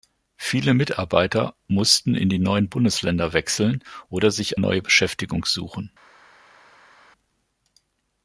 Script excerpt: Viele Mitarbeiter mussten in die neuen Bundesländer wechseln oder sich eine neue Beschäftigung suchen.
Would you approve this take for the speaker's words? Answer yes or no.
no